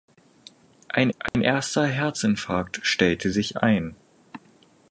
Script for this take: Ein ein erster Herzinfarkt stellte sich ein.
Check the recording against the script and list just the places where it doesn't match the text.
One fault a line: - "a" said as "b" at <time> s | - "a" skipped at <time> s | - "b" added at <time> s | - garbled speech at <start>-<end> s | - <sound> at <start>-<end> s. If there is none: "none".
- dropout at 1.3-1.3 s